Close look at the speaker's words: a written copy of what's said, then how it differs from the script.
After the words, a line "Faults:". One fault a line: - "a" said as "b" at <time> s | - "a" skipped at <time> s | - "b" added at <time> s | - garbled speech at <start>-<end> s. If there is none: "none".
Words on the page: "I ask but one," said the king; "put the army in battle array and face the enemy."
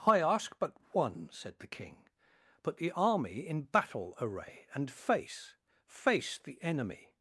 "I ask but one," said the king; "put the army in battle array and face face the enemy."
Faults:
- "face" added at 5.9 s